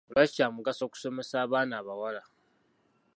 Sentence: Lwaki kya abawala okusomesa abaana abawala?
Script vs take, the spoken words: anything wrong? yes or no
yes